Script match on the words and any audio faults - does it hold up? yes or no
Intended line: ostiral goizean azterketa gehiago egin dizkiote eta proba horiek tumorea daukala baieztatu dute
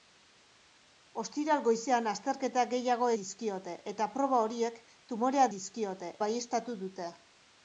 no